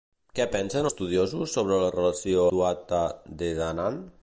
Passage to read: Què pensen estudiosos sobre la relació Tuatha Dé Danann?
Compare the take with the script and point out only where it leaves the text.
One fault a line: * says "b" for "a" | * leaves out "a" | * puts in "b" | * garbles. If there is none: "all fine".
all fine